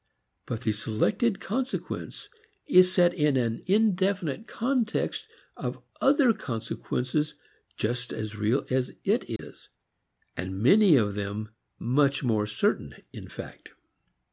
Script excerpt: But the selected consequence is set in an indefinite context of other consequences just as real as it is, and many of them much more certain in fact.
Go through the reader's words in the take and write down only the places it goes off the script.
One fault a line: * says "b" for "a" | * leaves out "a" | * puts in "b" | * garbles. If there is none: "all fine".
all fine